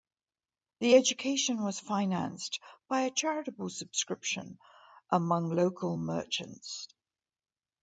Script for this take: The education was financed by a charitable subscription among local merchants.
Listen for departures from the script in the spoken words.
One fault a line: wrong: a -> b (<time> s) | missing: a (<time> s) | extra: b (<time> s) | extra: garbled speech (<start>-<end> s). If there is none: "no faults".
no faults